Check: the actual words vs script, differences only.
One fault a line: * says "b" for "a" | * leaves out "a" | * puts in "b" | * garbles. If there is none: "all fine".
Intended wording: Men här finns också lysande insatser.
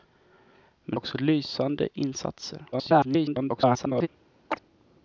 * leaves out "här finns"
* garbles